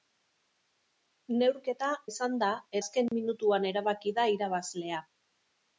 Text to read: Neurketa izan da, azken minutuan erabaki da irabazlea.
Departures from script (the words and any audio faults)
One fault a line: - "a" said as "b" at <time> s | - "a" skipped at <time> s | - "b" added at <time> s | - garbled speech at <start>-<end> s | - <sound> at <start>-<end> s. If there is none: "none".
- dropout at 3.1-3.1 s